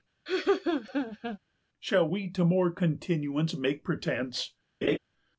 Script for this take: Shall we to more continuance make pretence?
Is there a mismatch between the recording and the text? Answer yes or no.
no